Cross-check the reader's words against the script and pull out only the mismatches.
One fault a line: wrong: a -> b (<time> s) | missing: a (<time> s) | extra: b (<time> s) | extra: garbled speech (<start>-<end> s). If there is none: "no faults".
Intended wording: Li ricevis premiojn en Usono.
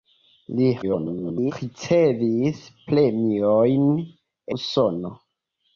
extra: garbled speech (0.8-1.5 s)
missing: en (3.9 s)